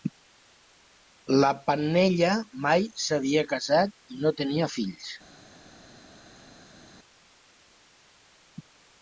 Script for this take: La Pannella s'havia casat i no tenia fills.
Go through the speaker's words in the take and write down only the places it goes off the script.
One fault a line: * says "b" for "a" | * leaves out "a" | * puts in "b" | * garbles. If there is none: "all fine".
* puts in "mai"